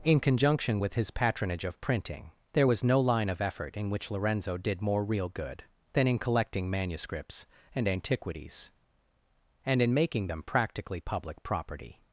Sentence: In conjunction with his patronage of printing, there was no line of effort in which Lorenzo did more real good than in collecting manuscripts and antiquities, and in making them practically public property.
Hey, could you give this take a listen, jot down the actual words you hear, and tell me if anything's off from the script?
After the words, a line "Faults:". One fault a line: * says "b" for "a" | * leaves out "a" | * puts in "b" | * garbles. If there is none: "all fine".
In conjunction with his patronage of printing, there was no line of effort in which Lorenzo did more real good than in collecting manuscripts and antiquities, and in making them practically public property.
Faults:
all fine